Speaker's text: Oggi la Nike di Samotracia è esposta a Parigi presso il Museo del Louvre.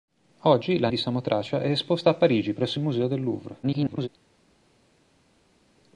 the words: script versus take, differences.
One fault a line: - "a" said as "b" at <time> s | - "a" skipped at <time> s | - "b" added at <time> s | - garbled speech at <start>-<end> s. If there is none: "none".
- "Nike" skipped at 0.9 s
- garbled speech at 3.6-4.1 s